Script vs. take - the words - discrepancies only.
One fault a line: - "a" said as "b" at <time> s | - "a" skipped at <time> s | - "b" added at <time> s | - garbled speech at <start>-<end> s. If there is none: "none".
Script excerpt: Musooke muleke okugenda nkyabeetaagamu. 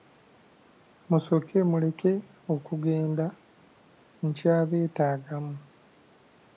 none